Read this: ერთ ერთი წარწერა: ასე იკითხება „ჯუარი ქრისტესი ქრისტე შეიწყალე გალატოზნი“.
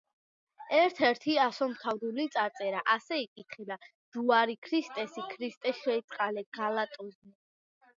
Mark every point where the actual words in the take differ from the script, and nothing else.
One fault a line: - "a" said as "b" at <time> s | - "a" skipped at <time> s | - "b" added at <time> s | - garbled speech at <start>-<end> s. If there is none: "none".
- "ასომთავრული" added at 1.4 s